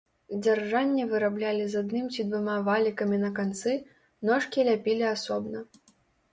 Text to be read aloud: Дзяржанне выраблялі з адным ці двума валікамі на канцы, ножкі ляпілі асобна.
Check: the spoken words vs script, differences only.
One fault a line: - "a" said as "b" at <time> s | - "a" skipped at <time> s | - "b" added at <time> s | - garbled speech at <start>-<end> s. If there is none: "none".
none